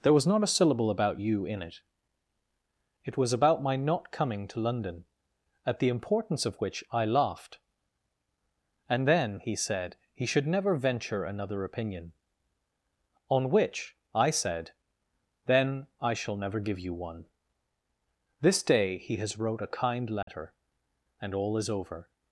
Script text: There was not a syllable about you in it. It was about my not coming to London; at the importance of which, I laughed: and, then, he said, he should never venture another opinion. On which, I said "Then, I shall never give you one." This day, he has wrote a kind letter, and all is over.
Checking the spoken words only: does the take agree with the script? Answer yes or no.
yes